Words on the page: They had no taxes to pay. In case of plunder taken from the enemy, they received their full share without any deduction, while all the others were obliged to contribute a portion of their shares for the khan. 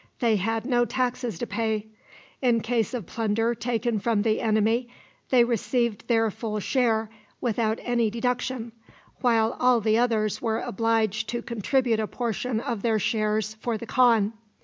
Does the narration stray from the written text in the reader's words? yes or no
no